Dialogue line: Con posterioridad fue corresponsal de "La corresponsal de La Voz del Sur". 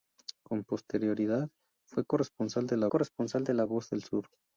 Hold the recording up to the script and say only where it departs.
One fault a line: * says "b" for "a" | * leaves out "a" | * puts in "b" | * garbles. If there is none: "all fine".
all fine